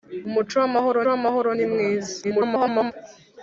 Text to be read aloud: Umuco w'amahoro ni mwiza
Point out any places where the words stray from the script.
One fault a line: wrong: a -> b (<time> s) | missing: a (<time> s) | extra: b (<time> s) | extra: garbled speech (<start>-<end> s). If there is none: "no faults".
extra: w'amahoro (1.1 s)
extra: garbled speech (2.2-2.9 s)